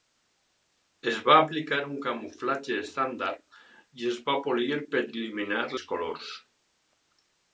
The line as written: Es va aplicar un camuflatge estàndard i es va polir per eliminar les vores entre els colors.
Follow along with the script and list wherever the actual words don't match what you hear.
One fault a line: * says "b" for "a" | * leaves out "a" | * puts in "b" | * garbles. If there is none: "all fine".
* leaves out "les vores entre"